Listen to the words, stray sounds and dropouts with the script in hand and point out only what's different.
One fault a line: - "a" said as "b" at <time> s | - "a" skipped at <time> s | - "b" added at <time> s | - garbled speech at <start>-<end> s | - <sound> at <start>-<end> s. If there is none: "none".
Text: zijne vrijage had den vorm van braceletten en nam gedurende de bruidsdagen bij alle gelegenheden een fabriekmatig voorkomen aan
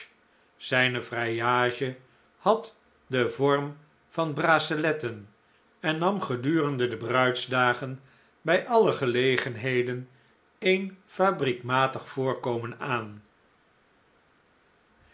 none